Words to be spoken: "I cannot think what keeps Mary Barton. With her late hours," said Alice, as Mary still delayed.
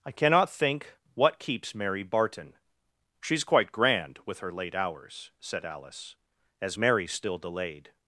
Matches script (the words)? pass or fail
fail